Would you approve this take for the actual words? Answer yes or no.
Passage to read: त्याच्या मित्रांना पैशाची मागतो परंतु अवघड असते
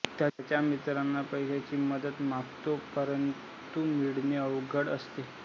no